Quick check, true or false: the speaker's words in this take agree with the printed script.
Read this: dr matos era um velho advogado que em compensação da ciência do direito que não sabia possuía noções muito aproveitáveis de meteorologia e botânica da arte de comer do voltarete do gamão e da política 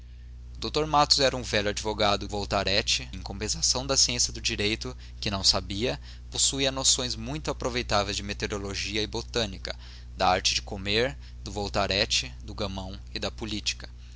false